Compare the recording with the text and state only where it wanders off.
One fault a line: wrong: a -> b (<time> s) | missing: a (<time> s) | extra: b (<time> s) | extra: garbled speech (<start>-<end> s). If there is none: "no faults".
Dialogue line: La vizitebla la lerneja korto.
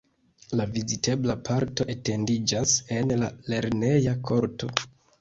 extra: parto etendiĝas en (1.5 s)